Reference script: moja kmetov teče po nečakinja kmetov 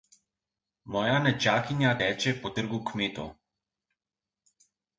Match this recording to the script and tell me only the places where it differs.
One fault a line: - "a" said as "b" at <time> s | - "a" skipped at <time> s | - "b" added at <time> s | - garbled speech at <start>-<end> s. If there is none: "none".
- "kmetov" said as "nečakinja" at 1.2 s
- "nečakinja" said as "trgu" at 2.6 s